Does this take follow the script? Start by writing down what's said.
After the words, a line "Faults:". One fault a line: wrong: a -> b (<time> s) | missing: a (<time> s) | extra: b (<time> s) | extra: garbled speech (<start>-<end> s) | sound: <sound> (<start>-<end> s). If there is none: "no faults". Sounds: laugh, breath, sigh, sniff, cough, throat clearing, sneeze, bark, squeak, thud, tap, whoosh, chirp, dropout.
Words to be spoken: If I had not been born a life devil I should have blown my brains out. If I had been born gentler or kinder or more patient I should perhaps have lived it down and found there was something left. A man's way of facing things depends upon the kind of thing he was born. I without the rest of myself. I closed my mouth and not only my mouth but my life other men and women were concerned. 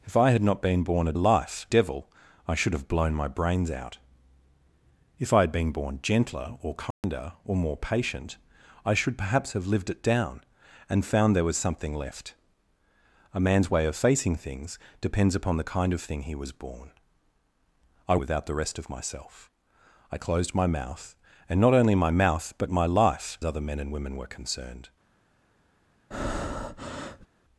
If I had not been born a life devil I should have blown my brains out. If I had been born gentler or kinder or more patient I should perhaps have lived it down and found there was something left. A man's way of facing things depends upon the kind of thing he was born. I without the rest of myself. I closed my mouth and not only my mouth but my life other men and women were concerned.
Faults:
sound: dropout (6.9-7.0 s)
sound: breath (26.1-27.3 s)